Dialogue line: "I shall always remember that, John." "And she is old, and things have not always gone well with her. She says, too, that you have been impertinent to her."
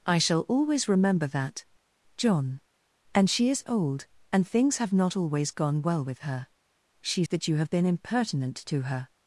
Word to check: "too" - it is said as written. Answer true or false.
false